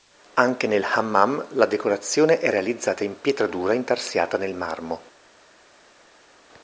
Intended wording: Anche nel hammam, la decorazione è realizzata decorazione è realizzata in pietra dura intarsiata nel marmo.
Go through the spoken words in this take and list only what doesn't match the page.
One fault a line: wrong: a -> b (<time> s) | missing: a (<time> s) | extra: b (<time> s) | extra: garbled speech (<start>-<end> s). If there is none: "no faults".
missing: decorazione è realizzata (3.0 s)